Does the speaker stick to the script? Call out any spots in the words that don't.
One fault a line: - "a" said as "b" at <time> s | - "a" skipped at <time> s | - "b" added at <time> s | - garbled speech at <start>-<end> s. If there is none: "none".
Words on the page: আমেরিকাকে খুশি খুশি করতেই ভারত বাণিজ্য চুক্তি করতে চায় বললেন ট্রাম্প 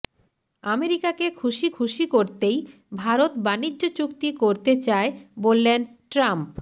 none